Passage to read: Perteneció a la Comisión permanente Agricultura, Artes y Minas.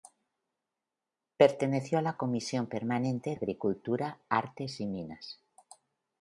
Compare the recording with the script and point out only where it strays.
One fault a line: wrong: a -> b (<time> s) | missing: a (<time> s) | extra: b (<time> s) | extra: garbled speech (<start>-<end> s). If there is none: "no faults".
no faults